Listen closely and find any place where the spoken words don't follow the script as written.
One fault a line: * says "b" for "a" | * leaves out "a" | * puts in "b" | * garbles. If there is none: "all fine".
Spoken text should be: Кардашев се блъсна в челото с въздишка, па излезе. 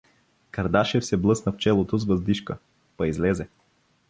all fine